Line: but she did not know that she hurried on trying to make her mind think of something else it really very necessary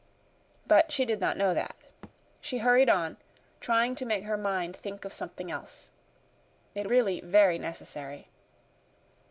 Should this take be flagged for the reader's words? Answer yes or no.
no